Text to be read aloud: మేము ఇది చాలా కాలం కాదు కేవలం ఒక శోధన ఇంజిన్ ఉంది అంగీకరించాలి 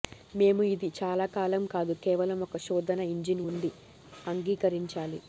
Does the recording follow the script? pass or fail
pass